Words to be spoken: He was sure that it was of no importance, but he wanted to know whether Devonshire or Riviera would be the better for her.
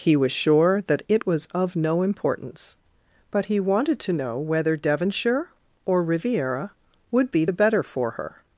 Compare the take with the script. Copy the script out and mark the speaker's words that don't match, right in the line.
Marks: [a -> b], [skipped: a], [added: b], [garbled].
He was sure that it was of no importance, but he wanted to know whether Devonshire or Riviera would be the better for her.